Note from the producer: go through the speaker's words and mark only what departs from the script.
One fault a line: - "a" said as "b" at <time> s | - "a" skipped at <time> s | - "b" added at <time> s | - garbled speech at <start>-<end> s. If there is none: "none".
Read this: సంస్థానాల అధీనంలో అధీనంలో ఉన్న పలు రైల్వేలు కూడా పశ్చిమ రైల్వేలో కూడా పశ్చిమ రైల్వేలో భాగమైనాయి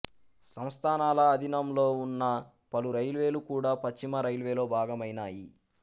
- "అధీనంలో" skipped at 1.9 s
- "కూడా పశ్చిమ రైల్వేలో" skipped at 4.7 s